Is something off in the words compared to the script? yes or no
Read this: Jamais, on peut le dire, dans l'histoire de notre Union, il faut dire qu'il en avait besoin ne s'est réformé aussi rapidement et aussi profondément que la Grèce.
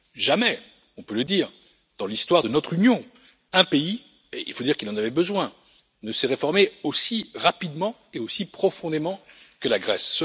yes